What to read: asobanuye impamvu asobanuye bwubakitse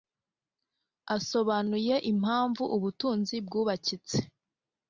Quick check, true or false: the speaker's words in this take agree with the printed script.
false